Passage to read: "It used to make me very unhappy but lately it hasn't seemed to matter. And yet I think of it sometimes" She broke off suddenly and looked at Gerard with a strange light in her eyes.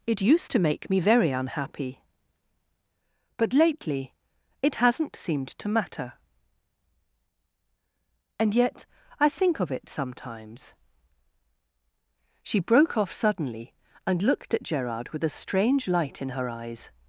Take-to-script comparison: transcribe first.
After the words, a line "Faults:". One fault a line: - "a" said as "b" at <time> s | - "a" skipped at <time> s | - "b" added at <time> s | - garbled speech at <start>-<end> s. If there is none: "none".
"It used to make me very unhappy but lately it hasn't seemed to matter. And yet I think of it sometimes" She broke off suddenly and looked at Gerard with a strange light in her eyes.
Faults:
none